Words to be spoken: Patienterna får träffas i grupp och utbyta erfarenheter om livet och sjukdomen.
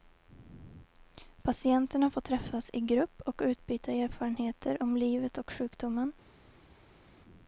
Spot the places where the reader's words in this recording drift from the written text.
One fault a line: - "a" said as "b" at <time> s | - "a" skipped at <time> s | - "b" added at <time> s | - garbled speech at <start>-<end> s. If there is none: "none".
none